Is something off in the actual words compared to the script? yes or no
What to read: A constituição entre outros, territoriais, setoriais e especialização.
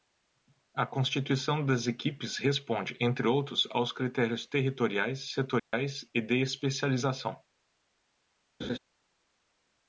yes